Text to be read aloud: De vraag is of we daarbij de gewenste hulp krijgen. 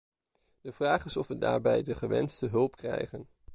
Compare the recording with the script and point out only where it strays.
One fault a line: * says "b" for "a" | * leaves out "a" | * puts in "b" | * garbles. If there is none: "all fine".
all fine